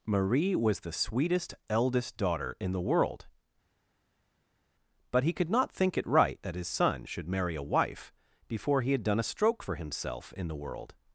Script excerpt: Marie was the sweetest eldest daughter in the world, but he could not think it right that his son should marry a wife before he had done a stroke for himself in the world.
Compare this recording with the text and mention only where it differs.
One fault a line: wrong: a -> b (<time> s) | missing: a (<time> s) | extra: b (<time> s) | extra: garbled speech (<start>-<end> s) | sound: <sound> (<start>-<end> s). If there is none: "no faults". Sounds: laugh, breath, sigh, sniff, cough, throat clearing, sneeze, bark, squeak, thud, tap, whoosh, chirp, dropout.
no faults